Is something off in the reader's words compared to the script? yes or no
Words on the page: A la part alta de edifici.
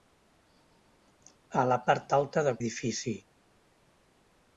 no